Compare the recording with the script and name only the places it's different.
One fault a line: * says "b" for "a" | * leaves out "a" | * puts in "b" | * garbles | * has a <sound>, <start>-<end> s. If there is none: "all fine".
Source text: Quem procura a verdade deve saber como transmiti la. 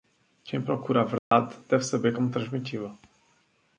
* has a dropout, 1.2-1.3 s